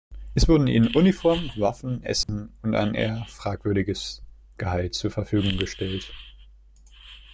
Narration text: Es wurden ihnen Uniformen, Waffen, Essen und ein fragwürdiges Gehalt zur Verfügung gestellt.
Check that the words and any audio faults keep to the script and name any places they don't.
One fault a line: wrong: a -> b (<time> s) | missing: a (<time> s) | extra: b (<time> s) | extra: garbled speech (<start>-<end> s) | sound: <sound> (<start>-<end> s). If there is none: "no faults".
sound: dropout (2.2-2.3 s)
extra: eher (2.9 s)